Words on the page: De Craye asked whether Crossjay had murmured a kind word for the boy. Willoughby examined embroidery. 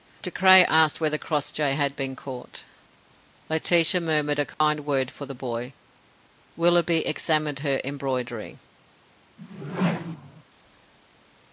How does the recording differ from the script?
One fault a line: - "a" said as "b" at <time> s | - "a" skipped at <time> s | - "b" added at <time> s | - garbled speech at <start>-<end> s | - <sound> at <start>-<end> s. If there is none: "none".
- "been caught Laetitia" added at 1.9 s
- dropout at 4.5-4.6 s
- "her" added at 7.6 s
- whoosh at 9.4-10.4 s